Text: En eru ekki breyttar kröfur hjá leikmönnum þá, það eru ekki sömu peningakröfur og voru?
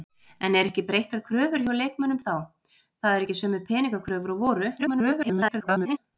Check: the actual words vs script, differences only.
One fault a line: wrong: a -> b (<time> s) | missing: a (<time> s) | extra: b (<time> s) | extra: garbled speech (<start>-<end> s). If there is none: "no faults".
extra: garbled speech (4.8-6.0 s)